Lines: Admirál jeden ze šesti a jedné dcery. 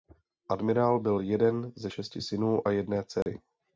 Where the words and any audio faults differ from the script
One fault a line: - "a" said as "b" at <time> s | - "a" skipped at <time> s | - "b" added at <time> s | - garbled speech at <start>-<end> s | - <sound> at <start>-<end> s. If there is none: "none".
- "byl" added at 1.0 s
- "synů" added at 2.2 s
- dropout at 3.2-3.3 s